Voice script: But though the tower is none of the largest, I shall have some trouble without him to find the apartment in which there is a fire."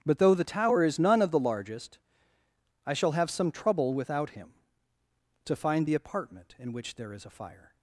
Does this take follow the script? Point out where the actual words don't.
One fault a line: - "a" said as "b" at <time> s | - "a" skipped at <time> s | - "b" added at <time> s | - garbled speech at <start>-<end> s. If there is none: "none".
none